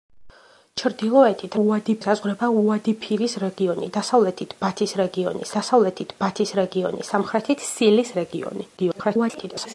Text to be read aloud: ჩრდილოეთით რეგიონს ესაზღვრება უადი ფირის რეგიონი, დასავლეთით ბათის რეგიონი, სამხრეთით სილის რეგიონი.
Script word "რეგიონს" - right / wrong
wrong